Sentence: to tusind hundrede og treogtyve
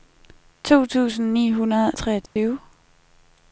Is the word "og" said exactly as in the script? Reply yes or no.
yes